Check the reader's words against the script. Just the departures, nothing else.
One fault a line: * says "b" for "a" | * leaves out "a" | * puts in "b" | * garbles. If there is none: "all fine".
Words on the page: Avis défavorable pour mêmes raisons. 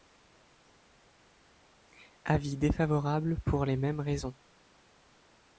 * puts in "les"